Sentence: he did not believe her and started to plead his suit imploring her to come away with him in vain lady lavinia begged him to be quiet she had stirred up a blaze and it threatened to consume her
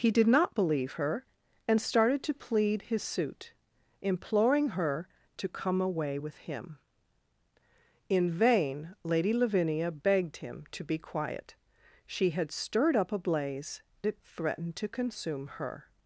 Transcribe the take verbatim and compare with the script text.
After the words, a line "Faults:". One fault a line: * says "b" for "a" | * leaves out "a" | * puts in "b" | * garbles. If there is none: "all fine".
he did not believe her and started to plead his suit imploring her to come away with him in vain lady lavinia begged him to be quiet she had stirred up a blaze it threatened to consume her
Faults:
* leaves out "and"